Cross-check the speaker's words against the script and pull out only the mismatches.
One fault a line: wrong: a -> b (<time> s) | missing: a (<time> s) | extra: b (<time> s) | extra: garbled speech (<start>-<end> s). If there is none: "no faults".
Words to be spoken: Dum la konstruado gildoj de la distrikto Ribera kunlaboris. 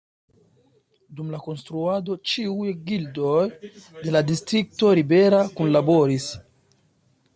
extra: ĉiuj (2.3 s)